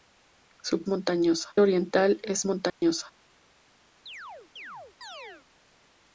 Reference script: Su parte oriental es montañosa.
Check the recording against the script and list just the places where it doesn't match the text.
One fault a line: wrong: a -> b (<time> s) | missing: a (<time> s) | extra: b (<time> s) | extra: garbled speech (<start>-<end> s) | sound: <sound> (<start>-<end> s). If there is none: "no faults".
wrong: parte -> montañosa (0.9 s)
sound: dropout (2.7-2.8 s)
sound: chirp (4.1-5.5 s)